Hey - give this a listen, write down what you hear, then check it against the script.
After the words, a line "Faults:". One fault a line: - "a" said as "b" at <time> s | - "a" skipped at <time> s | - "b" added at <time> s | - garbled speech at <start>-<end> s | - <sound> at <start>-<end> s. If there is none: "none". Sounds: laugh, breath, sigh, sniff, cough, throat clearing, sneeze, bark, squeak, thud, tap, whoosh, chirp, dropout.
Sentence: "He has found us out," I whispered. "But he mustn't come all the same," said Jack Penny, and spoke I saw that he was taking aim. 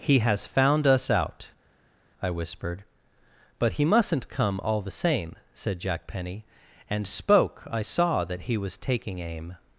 "He has found us out," I whispered. "But he mustn't come all the same," said Jack Penny, and spoke I saw that he was taking aim.
Faults:
none